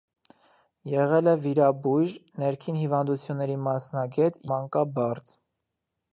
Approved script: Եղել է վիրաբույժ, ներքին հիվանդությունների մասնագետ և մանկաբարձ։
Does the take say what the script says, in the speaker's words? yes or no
no